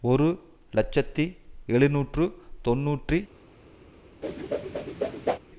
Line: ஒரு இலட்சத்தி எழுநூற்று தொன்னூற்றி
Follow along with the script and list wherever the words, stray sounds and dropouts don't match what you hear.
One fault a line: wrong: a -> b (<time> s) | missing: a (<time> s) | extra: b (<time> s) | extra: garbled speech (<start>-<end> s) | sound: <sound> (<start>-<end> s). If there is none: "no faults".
sound: whoosh (4.2-5.4 s)